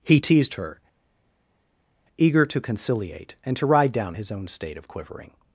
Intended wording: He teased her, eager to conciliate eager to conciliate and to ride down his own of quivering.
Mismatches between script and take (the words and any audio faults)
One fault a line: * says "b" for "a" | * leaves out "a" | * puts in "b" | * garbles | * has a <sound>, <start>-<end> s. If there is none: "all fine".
* leaves out "eager to conciliate"
* puts in "state"